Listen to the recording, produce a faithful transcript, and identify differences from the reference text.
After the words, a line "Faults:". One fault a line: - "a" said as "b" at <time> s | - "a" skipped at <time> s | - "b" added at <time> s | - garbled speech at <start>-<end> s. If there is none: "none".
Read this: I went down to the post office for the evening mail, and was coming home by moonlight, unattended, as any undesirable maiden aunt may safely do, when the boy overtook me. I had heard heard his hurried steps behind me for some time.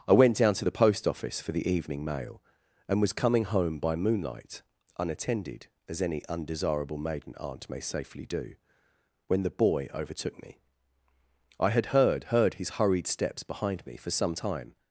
I went down to the post office for the evening mail, and was coming home by moonlight, unattended, as any undesirable maiden aunt may safely do, when the boy overtook me. I had heard heard his hurried steps behind me for some time.
Faults:
none